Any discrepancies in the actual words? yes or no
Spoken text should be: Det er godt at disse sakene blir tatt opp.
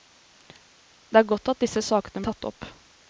yes